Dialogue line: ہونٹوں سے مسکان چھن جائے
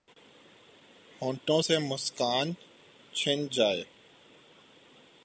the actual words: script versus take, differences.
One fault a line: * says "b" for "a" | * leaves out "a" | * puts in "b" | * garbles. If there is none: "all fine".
all fine